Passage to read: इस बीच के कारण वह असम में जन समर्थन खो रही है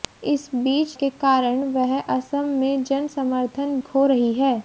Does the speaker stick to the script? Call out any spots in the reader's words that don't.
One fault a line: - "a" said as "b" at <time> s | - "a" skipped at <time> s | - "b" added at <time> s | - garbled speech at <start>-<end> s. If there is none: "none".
none